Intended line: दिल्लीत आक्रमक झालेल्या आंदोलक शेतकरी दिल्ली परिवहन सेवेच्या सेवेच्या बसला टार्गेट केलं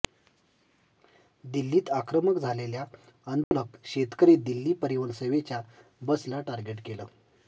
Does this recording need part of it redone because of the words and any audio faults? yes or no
yes